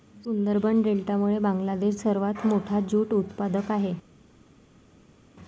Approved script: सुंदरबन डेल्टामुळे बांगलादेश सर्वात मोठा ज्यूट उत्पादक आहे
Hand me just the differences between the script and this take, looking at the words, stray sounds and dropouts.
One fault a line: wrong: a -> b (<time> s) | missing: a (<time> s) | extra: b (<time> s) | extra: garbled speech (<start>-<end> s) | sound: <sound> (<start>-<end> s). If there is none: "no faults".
no faults